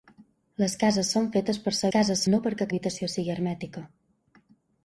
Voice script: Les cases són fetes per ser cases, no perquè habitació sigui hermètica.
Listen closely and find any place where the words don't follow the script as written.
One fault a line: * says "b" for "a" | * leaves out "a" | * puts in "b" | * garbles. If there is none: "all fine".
all fine